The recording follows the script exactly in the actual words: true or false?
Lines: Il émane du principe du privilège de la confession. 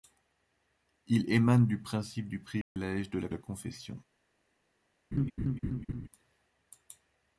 false